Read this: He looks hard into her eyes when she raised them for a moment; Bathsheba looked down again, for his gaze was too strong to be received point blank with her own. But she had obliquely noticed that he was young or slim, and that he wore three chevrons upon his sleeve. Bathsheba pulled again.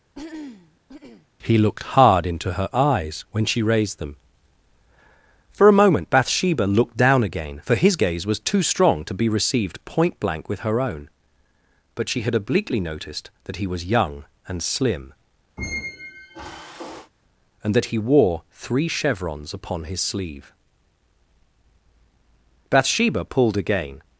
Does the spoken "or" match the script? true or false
false